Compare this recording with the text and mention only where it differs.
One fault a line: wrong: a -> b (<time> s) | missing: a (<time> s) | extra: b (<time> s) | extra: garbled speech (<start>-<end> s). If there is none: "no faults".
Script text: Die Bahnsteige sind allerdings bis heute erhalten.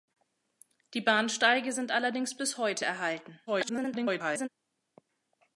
extra: garbled speech (3.5-4.5 s)